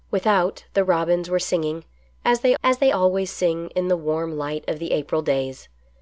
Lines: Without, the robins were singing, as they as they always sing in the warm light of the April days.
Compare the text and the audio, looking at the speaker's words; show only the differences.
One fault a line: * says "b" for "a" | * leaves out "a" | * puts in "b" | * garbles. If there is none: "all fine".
all fine